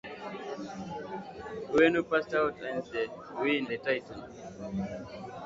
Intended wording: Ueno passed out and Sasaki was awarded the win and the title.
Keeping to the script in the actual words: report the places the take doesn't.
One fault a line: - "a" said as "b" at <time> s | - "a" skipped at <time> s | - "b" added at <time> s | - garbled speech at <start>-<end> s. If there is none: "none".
- "Sasaki was awarded" skipped at 2.8 s
- "and" skipped at 3.7 s